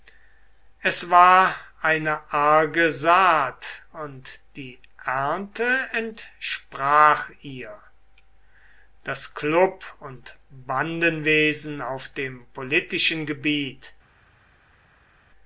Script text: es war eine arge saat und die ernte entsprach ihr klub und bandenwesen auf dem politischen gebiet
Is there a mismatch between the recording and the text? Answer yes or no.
yes